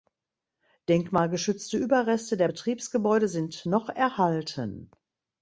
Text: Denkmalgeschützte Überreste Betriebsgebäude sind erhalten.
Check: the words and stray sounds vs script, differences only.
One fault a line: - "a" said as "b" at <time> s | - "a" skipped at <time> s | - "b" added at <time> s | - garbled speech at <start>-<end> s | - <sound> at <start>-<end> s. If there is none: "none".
- "der" added at 2.4 s
- "noch" added at 3.6 s